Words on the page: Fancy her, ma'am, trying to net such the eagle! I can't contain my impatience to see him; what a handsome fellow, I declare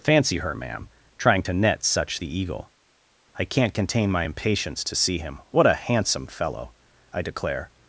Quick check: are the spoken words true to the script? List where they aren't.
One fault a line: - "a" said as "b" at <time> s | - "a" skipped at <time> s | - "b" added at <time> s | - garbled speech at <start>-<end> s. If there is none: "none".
none